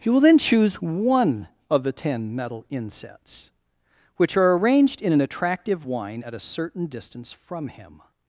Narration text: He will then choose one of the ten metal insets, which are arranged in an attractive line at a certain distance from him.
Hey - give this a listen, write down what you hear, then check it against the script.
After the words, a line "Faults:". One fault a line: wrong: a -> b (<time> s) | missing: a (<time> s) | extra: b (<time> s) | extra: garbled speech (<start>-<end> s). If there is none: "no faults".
He will then choose one of the ten metal insets, which are arranged in an attractive wine at a certain distance from him.
Faults:
wrong: line -> wine (5.8 s)